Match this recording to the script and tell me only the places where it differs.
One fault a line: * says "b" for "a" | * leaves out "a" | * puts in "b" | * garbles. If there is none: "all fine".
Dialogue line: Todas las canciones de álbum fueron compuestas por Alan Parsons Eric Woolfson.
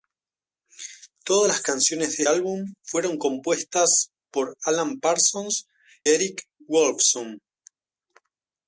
all fine